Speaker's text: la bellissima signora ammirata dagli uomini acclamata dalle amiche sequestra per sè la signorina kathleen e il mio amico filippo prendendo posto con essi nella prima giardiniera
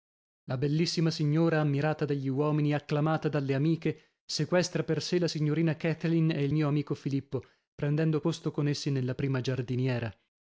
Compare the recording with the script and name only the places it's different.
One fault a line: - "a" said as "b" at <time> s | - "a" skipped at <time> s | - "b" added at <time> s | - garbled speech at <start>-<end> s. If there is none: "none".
none